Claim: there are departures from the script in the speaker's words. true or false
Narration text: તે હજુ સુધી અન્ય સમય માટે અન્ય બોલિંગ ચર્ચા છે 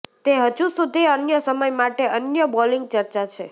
false